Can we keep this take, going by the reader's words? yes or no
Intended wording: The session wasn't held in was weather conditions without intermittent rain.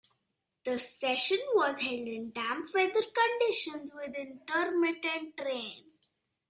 no